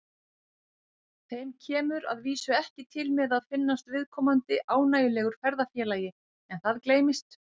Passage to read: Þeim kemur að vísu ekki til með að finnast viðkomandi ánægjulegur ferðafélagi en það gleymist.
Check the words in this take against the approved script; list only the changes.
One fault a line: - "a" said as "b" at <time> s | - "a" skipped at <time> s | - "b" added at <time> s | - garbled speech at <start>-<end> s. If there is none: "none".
none